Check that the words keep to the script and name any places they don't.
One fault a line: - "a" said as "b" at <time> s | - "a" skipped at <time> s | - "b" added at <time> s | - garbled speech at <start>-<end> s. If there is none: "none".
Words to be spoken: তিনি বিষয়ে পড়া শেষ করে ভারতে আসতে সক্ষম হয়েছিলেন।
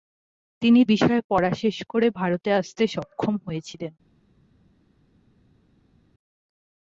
none